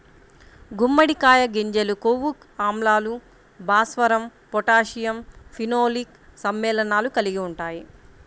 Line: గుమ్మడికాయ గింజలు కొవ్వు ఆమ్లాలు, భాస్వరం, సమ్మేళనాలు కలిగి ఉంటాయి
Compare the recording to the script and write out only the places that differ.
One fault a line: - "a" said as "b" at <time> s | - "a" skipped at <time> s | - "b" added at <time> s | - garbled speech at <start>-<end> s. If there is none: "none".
- "పొటాషియం ఫినోలిక్" added at 4.5 s